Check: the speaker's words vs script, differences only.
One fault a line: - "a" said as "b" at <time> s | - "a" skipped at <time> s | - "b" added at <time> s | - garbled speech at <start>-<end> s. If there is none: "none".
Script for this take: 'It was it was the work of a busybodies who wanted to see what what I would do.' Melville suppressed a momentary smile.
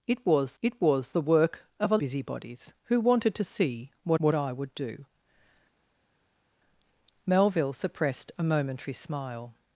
none